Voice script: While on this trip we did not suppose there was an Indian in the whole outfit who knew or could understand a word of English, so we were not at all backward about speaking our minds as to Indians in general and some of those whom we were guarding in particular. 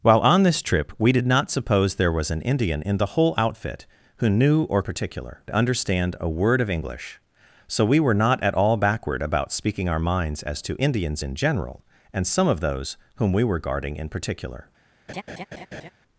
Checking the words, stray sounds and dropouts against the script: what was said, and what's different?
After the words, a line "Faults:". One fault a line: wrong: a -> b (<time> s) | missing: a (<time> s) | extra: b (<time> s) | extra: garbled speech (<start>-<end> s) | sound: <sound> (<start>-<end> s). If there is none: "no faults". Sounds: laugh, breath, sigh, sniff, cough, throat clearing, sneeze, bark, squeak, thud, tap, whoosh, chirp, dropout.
While on this trip we did not suppose there was an Indian in the whole outfit who knew or particular understand a word of English, so we were not at all backward about speaking our minds as to Indians in general and some of those whom we were guarding in particular.
Faults:
wrong: could -> particular (4.8 s)
sound: laugh (15.1-15.9 s)